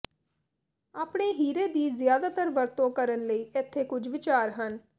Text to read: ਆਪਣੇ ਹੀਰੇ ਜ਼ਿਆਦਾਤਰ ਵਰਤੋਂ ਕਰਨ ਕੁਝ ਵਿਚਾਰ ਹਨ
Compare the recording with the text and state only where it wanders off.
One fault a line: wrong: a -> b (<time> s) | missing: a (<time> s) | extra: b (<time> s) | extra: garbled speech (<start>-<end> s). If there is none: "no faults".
extra: ਦੀ (1.7 s)
extra: ਲਈ ਇੱਥੇ (3.3 s)